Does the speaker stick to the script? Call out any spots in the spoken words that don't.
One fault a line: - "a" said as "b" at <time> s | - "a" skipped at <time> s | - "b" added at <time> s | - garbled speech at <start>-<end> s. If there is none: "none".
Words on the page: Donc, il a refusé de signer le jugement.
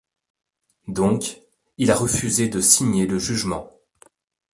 none